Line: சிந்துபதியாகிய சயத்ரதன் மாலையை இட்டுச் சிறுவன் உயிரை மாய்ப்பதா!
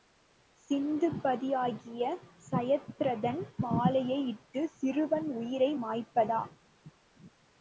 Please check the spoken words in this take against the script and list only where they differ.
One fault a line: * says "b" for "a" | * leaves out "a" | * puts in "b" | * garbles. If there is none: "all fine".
all fine